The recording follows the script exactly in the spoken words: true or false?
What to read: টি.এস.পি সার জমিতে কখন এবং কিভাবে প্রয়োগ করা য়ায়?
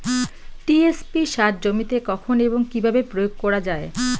true